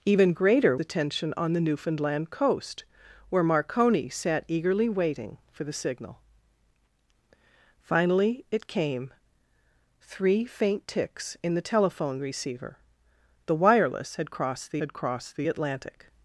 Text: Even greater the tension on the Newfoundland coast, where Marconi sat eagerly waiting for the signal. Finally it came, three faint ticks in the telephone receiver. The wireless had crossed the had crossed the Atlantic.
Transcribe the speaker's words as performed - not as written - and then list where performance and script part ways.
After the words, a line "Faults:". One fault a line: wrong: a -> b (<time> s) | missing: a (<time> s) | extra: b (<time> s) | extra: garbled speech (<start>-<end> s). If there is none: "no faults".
Even greater the tension on the Newfoundland coast, where Marconi sat eagerly waiting for the signal. Finally it came, three faint ticks in the telephone receiver. The wireless had crossed the had crossed the Atlantic.
Faults:
no faults